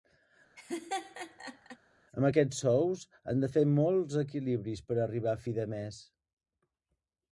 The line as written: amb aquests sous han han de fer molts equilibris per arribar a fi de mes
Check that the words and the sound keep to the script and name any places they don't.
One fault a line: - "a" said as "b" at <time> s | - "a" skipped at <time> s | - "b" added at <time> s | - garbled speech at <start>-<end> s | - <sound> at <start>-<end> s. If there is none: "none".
- laugh at 0.6-1.8 s
- "han" skipped at 3.4 s